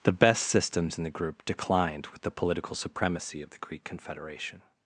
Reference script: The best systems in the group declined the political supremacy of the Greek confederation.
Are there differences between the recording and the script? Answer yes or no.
yes